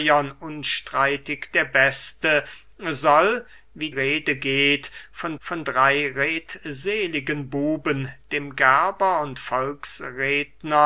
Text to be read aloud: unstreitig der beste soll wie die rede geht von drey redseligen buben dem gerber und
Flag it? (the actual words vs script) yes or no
yes